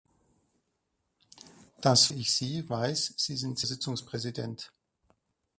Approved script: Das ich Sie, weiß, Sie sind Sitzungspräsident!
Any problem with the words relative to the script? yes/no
no